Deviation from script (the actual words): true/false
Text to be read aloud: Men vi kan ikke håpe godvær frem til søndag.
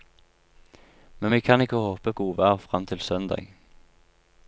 false